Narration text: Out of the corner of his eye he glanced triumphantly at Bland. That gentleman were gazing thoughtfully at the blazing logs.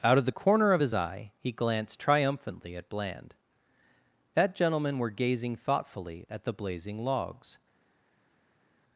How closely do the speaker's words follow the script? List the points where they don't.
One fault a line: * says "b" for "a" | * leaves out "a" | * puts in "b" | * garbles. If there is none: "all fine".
all fine